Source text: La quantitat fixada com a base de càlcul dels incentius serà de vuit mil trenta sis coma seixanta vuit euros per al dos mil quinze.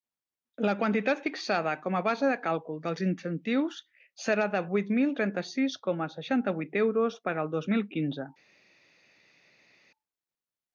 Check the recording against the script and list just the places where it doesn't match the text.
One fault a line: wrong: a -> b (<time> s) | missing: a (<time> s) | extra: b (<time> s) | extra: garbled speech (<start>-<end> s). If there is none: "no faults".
no faults